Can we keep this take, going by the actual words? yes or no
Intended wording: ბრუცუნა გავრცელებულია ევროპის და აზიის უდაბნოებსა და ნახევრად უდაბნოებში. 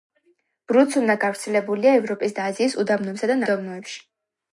no